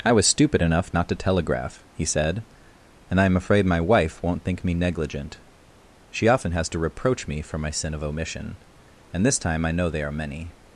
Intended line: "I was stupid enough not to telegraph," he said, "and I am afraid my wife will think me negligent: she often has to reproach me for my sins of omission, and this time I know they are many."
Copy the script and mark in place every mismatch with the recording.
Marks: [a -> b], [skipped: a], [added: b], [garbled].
"I was stupid enough not to telegraph," he said, "and I am afraid my wife [will -> won't] think me negligent: she often has to reproach me for my [sins -> sin] of omission, and this time I know they are many."